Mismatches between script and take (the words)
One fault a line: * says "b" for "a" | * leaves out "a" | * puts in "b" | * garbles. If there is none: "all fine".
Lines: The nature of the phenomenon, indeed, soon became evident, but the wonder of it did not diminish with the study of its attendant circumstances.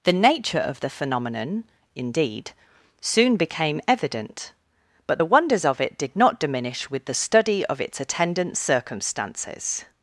* says "wonders" for "wonder"